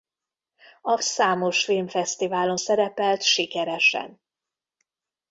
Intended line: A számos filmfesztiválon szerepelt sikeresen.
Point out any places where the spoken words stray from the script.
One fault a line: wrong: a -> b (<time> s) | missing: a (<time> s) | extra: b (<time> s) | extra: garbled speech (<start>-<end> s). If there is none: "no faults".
no faults